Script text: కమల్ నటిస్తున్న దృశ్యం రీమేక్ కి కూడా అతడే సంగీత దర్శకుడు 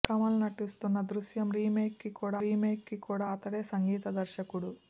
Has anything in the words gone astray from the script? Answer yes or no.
yes